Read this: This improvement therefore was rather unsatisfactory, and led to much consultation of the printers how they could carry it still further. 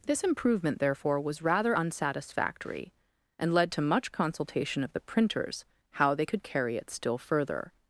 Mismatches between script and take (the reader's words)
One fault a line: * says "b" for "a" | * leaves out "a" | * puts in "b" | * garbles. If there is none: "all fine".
all fine